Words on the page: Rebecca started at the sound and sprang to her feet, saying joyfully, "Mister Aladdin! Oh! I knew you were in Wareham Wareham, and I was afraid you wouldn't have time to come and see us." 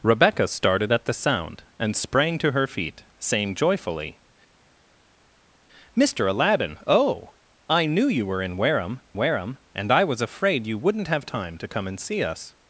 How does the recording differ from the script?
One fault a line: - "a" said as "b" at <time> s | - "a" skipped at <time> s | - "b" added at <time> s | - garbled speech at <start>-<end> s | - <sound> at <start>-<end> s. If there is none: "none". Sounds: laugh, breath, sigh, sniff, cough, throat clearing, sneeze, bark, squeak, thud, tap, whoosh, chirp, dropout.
none